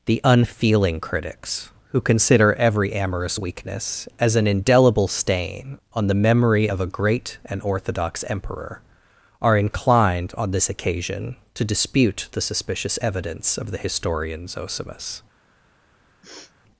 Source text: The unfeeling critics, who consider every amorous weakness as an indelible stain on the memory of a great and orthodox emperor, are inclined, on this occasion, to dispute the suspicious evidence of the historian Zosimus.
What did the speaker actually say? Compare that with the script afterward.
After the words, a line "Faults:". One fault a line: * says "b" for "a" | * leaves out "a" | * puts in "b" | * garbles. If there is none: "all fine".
The unfeeling critics, who consider every amorous weakness as an indelible stain on the memory of a great and orthodox emperor, are inclined, on this occasion, to dispute the suspicious evidence of the historian Zosimus.
Faults:
all fine